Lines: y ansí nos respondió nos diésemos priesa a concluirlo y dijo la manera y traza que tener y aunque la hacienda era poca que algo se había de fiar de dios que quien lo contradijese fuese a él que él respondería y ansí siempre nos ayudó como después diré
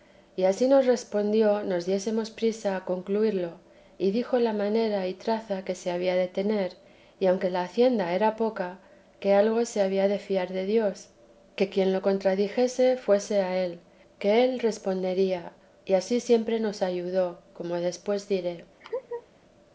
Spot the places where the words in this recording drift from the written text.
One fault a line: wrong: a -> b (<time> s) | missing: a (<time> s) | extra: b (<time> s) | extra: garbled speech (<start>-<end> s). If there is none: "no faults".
extra: se había de (5.8 s)